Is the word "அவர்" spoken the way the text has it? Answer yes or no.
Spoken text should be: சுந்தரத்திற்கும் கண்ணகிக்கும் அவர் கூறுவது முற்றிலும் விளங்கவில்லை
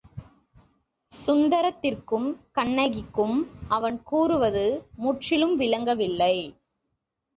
no